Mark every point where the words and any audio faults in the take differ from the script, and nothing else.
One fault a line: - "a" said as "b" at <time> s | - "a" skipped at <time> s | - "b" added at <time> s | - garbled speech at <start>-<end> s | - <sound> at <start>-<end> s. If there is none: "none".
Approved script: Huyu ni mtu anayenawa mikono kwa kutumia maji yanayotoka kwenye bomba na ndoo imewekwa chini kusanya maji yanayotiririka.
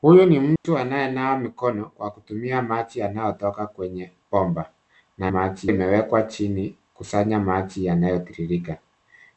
- dropout at 0.6-0.6 s
- "ndoo" said as "maji" at 5.3 s